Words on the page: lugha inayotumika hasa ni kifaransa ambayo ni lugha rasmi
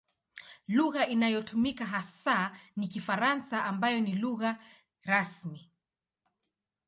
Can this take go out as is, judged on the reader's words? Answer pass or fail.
pass